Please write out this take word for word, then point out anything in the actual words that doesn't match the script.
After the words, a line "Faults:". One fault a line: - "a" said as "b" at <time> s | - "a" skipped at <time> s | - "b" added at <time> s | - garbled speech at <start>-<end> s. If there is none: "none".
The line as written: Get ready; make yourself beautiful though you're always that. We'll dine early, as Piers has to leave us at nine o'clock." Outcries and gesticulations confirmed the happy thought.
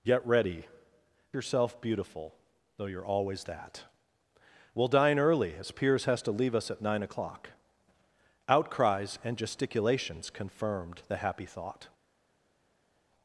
Get ready; yourself beautiful though you're always that. We'll dine early, as Piers has to leave us at nine o'clock." Outcries and gesticulations confirmed the happy thought.
Faults:
- "make" skipped at 0.7 s